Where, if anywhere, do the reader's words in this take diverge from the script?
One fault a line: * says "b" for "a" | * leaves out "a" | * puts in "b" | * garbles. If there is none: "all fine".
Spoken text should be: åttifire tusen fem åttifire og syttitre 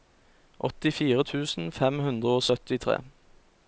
* says "hundre" for "åttifire"